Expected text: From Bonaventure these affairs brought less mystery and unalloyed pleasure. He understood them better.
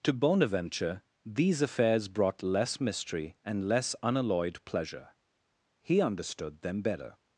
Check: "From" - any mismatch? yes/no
yes